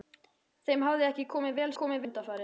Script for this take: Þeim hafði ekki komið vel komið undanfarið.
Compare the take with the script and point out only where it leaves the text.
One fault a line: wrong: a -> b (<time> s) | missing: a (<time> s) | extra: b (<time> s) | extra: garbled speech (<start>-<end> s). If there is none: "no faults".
no faults